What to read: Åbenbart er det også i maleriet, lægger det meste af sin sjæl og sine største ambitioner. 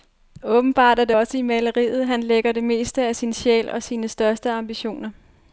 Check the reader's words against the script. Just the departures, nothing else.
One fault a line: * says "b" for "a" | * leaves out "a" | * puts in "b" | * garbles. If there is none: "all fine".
* puts in "han"